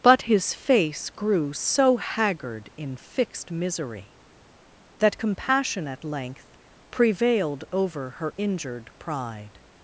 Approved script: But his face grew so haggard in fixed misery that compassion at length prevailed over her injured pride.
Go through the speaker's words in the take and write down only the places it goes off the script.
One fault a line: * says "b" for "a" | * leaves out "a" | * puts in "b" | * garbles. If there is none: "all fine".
all fine